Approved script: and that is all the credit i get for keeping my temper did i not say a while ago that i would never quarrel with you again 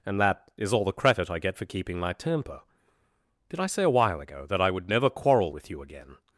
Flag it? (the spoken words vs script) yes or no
yes